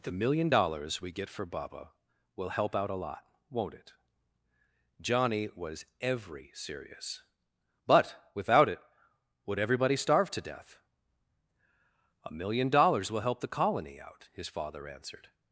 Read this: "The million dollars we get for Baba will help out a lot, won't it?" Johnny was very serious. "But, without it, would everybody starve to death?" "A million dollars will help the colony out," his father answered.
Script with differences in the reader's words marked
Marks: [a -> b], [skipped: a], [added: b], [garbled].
"The million dollars we get for Baba will help out a lot, won't it?" Johnny was [very -> every] serious. "But, without it, would everybody starve to death?" "A million dollars will help the colony out," his father answered.